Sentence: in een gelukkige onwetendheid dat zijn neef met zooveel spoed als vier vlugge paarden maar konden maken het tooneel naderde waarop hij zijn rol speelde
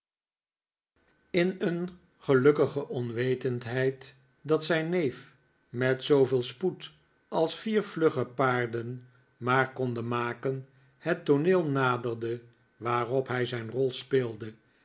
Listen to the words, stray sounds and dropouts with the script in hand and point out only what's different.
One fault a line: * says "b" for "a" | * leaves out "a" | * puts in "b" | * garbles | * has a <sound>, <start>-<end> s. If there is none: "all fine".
all fine